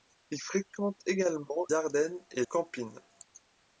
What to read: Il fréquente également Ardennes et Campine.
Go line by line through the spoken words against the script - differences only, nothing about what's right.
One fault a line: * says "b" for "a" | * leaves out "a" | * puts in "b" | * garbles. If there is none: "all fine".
all fine